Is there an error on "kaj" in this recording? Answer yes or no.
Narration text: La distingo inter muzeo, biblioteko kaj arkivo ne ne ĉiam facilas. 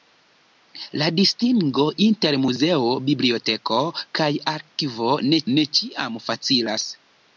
no